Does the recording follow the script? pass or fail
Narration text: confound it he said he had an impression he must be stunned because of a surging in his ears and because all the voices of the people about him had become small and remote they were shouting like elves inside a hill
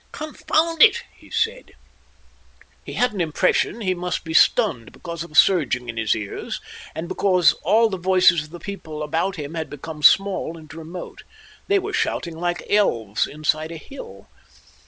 pass